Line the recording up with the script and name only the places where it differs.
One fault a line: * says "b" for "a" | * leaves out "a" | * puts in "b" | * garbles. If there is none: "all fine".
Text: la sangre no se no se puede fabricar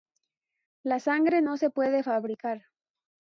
* leaves out "no se"